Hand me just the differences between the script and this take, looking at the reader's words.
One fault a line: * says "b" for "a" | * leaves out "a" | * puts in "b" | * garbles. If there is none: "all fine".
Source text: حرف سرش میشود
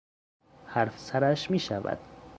all fine